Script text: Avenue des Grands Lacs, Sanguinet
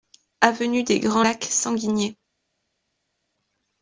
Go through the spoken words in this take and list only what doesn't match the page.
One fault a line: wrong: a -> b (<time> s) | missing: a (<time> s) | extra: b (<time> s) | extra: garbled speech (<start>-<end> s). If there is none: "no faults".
no faults